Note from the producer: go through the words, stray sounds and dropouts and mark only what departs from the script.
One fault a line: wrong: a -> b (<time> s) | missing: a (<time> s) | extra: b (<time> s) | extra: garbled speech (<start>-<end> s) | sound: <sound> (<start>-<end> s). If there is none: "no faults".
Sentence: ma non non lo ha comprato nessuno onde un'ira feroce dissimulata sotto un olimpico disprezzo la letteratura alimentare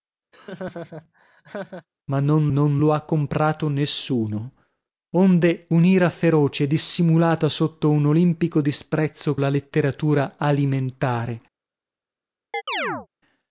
sound: laugh (0.3-1.9 s)
sound: chirp (12.5-13.1 s)